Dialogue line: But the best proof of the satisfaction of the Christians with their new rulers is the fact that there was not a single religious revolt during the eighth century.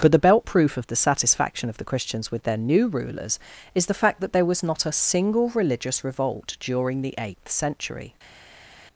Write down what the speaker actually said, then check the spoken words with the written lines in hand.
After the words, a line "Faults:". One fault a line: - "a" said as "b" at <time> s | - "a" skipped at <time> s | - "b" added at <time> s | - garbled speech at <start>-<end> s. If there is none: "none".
But the belt proof of the satisfaction of the Christians with their new rulers is the fact that there was not a single religious revolt during the eighth century.
Faults:
- "best" said as "belt" at 0.2 s